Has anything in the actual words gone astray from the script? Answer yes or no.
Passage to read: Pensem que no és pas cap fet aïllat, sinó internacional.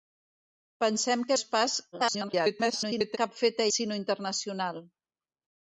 yes